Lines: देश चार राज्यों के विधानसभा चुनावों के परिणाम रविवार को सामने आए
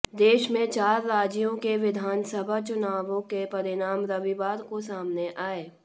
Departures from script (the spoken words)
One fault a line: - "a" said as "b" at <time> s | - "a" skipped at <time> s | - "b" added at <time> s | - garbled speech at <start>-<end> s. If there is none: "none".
- "में" added at 0.5 s